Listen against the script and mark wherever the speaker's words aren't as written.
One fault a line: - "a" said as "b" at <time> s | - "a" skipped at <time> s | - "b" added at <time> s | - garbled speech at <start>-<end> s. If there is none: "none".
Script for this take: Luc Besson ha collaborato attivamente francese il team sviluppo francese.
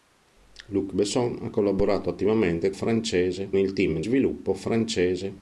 none